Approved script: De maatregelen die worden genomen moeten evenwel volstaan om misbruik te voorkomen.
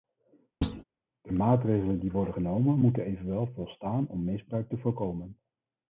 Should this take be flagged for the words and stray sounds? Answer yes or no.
yes